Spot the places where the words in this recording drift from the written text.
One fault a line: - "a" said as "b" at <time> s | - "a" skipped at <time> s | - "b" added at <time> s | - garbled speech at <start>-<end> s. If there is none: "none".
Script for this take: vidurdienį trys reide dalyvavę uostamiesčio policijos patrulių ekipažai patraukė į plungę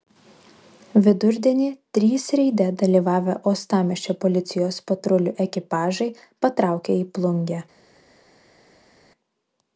none